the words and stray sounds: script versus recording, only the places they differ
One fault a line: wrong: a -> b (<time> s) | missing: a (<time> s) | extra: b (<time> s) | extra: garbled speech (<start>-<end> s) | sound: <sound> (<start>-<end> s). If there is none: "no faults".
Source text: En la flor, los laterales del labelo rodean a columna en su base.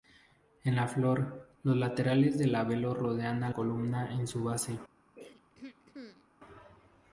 sound: throat clearing (5.2-6.3 s)